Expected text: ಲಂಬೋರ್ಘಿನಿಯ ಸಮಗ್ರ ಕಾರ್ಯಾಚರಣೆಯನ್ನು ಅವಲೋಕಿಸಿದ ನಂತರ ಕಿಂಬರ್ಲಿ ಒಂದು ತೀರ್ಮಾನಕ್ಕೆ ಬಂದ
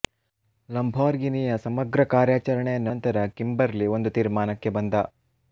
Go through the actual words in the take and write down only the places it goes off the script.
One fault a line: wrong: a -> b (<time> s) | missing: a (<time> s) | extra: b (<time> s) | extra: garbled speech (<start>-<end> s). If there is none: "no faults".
missing: ಅವಲೋಕಿಸಿದ (2.9 s)